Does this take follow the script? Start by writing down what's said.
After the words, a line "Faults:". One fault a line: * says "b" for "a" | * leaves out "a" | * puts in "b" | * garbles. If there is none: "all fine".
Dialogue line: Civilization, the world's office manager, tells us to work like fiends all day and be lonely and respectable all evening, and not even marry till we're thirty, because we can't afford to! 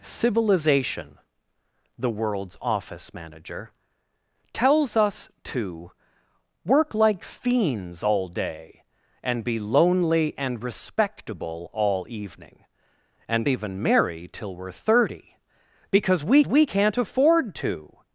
Civilization, the world's office manager, tells us to work like fiends all day and be lonely and respectable all evening, and even marry till we're thirty, because we we can't afford to!
Faults:
* leaves out "not"
* puts in "we"